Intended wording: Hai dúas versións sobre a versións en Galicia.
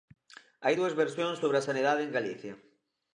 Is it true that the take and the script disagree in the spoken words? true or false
true